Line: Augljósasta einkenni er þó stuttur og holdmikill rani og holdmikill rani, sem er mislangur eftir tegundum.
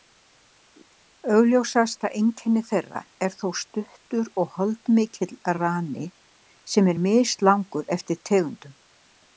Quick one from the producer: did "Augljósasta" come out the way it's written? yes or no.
yes